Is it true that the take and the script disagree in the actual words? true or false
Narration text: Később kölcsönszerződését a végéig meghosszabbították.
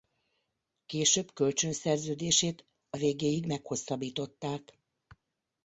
false